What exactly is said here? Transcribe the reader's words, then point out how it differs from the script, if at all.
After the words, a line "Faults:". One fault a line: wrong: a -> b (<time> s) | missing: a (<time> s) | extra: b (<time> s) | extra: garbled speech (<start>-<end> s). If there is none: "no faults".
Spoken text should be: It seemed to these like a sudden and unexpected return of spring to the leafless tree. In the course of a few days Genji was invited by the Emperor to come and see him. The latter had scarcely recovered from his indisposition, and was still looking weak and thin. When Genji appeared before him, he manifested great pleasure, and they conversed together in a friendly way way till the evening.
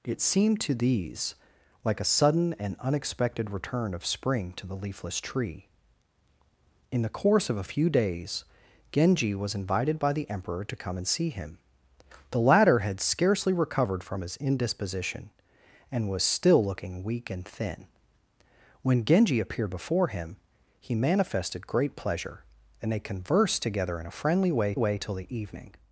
It seemed to these like a sudden and unexpected return of spring to the leafless tree. In the course of a few days Genji was invited by the Emperor to come and see him. The latter had scarcely recovered from his indisposition, and was still looking weak and thin. When Genji appeared before him, he manifested great pleasure, and they conversed together in a friendly way way till the evening.
Faults:
no faults